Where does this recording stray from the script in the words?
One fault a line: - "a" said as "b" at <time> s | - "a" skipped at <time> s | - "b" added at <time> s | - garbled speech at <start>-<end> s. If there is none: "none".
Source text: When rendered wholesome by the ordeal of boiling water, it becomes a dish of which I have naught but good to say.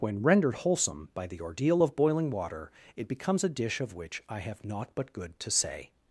none